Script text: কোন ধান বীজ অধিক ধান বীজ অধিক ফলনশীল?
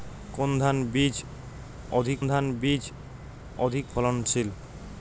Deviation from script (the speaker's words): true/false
false